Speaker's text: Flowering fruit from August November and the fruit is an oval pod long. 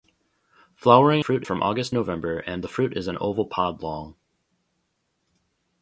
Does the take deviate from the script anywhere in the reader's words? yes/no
no